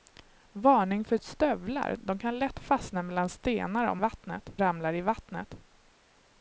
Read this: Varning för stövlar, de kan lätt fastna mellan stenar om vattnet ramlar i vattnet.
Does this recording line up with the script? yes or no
yes